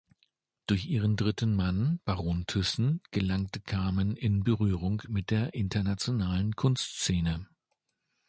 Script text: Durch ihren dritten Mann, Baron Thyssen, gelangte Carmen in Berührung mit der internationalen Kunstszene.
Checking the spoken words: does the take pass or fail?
pass